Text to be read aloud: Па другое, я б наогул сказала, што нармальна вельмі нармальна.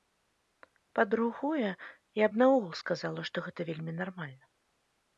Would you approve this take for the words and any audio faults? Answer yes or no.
no